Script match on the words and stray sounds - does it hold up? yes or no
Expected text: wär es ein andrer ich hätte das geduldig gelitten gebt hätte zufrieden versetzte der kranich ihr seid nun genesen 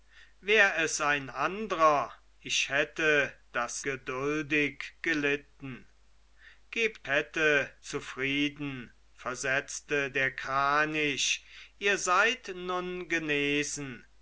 yes